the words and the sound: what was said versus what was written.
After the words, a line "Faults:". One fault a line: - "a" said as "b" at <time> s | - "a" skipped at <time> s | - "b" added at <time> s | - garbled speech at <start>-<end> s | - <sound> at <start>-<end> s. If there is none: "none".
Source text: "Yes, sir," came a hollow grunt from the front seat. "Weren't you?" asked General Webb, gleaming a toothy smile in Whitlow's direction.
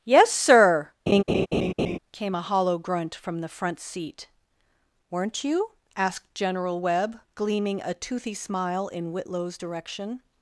"Yes, sir," came a hollow grunt from the front seat. "Weren't you?" asked General Webb, gleaming a toothy smile in Whitlow's direction.
Faults:
- laugh at 1.1-2.0 s